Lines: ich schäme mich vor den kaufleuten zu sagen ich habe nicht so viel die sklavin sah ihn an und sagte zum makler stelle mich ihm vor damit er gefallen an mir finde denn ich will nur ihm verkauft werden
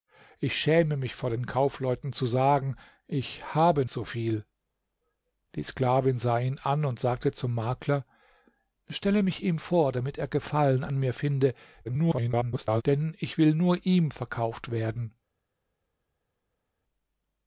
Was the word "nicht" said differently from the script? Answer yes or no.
yes